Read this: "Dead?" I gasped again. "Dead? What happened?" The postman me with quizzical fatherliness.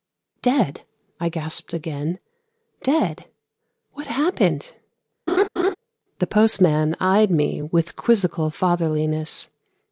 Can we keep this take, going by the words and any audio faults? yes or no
no